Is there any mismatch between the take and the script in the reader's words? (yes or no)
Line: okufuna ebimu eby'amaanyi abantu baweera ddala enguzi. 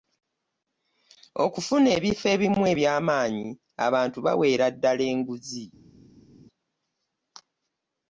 yes